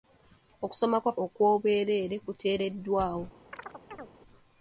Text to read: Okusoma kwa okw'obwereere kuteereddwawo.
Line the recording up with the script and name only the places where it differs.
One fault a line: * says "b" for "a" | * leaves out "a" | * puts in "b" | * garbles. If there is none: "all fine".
all fine